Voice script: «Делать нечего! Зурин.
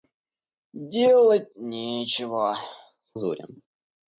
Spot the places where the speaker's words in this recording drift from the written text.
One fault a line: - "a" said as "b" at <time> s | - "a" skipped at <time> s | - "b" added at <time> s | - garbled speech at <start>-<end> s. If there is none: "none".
none